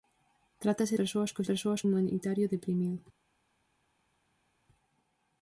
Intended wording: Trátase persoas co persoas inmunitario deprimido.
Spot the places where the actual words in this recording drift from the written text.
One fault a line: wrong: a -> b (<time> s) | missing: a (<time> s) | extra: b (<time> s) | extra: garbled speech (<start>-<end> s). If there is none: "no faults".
no faults